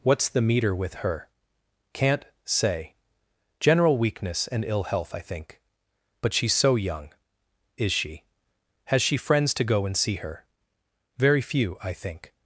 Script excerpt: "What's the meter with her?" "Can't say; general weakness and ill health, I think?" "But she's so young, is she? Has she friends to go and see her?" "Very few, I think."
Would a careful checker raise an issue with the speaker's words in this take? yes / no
no